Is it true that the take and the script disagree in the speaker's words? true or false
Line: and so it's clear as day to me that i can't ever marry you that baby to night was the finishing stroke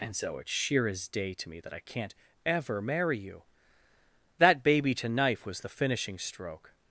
true